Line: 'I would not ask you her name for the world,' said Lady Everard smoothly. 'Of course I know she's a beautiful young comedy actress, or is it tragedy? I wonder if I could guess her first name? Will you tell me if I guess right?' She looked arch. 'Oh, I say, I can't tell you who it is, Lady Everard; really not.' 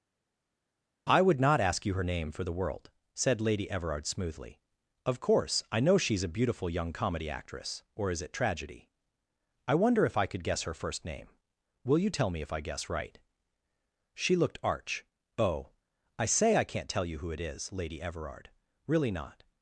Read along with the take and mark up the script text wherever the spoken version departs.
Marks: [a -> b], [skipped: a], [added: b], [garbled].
'I would not ask you her name for the world,' said Lady Everard smoothly. 'Of course I know she's a beautiful young comedy actress, or is it tragedy? I wonder if I could guess her first name? Will you tell me if I guess right?' She looked arch. 'Oh, I say, I can't tell you who it is, Lady Everard; really not.'